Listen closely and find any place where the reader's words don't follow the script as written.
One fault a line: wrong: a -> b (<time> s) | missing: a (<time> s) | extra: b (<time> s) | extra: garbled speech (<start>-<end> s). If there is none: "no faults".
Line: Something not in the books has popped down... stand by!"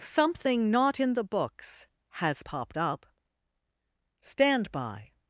wrong: down -> up (2.8 s)